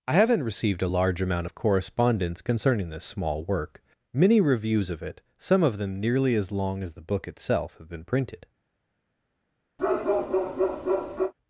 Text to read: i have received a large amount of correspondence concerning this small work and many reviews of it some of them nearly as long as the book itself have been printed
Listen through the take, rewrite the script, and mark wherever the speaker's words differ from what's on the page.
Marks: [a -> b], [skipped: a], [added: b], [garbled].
i [have -> haven't] received a large amount of correspondence concerning this small work [skipped: and] many reviews of it some of them nearly as long as the book itself have been printed